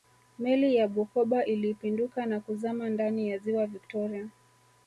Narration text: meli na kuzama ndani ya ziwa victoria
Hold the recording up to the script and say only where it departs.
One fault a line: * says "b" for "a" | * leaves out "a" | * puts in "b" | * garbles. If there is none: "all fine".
* puts in "ya bukoba ilipinduka"